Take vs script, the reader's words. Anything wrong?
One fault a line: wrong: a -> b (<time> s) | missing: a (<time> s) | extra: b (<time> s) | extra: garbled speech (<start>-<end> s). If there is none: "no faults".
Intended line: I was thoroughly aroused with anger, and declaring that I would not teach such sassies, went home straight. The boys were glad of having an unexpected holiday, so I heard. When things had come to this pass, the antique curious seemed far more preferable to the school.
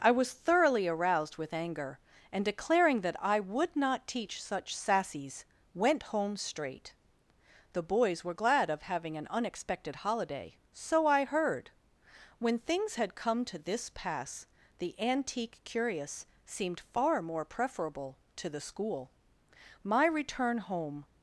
extra: My return home (19.8 s)